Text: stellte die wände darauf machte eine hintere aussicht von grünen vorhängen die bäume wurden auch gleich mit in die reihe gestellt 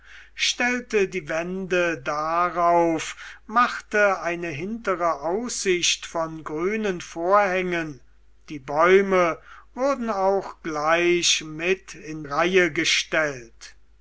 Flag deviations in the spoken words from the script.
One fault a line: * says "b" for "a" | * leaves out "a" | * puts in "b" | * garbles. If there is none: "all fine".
* leaves out "die"